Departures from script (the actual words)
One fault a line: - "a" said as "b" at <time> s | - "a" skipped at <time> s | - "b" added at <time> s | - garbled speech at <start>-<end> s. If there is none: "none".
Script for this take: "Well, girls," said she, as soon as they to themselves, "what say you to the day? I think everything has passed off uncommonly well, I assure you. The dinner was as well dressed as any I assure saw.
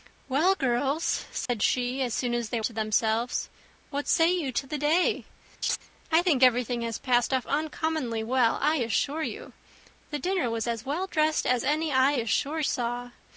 none